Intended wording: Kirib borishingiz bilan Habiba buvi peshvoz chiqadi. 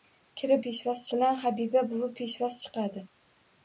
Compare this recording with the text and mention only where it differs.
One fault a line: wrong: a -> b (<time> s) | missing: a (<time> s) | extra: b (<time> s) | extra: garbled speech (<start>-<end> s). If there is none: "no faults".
wrong: borishingiz -> peshvoz (0.7 s)